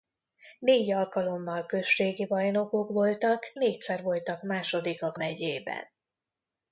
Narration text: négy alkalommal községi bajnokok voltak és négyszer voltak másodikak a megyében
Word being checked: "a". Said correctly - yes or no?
no